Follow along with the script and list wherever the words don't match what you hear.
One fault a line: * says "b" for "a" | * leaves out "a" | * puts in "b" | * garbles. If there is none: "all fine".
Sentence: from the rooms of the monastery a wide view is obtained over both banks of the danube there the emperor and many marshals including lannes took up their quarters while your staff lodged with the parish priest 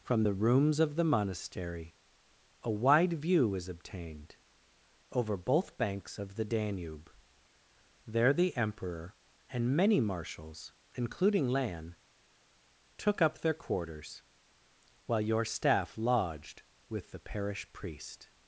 all fine